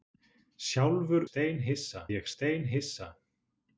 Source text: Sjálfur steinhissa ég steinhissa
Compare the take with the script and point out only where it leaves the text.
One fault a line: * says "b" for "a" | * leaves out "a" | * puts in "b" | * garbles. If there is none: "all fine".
all fine